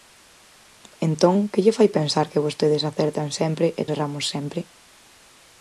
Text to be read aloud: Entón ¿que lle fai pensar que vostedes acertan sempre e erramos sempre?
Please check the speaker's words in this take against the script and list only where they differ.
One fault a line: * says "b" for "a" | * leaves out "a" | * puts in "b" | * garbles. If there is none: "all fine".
all fine